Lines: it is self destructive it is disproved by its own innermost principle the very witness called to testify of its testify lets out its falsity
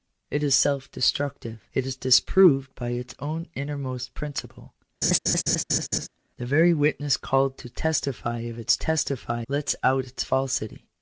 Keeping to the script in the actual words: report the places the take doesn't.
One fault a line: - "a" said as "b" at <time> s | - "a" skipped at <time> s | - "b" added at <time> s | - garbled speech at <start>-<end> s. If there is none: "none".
none